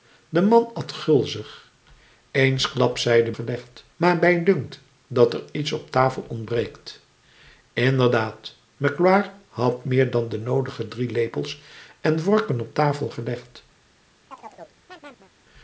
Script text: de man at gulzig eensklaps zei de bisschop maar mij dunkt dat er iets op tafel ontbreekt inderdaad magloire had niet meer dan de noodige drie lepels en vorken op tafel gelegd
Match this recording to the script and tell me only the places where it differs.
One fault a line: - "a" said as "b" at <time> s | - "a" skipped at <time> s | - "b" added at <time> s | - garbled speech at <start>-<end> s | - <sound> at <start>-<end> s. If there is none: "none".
- "bisschop" said as "gelegd" at 3.3 s
- "niet" skipped at 9.9 s
- chirp at 14.3-15.3 s